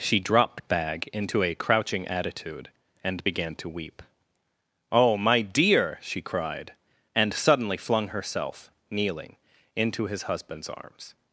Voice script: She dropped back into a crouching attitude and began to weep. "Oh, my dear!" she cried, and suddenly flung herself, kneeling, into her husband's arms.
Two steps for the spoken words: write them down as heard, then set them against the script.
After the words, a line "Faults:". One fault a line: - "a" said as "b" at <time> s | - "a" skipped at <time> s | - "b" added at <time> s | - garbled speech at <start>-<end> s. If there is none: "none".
She dropped bag into a crouching attitude and began to weep. "Oh, my dear!" she cried, and suddenly flung herself, kneeling, into his husband's arms.
Faults:
- "back" said as "bag" at 0.7 s
- "her" said as "his" at 10.1 s